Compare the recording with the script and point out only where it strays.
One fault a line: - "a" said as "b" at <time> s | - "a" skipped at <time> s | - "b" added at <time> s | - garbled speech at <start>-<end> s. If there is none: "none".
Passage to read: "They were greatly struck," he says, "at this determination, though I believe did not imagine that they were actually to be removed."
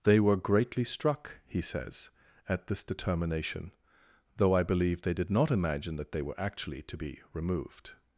- "they" added at 5.0 s